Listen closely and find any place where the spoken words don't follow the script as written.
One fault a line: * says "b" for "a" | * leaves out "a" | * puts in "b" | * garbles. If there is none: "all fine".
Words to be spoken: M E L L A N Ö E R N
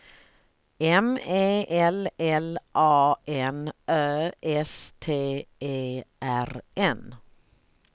* puts in "S T"